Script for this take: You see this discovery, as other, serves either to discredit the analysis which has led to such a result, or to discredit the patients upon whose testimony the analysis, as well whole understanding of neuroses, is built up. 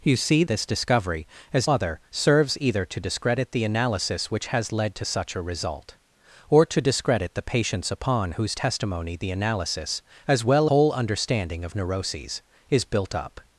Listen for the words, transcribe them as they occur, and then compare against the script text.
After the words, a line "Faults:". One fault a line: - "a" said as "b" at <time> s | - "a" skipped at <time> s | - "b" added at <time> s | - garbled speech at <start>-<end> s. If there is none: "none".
You see this discovery, as other, serves either to discredit the analysis which has led to such a result, or to discredit the patients upon whose testimony the analysis, as well whole understanding of neuroses, is built up.
Faults:
none